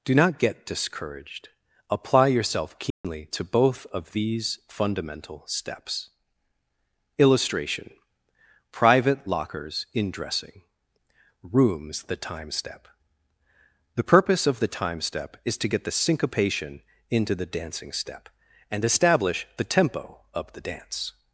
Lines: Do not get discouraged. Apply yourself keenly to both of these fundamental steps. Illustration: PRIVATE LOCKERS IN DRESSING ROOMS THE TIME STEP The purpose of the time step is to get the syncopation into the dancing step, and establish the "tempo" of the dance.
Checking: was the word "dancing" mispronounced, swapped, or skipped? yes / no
no